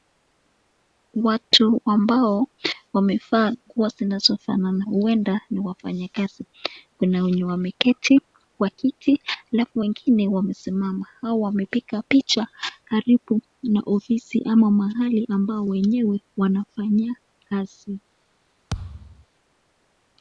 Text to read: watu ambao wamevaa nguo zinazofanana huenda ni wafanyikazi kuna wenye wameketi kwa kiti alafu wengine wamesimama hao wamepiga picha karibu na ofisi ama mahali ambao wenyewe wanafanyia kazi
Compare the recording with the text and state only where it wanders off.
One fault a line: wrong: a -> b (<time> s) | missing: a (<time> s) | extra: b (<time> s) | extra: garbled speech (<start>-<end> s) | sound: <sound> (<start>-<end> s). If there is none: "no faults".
sound: thud (18.7-19.3 s)